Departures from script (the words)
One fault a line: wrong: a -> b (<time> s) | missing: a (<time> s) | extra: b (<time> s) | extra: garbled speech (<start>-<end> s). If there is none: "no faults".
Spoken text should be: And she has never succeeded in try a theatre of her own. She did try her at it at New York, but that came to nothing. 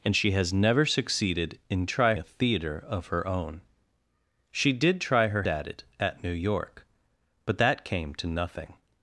no faults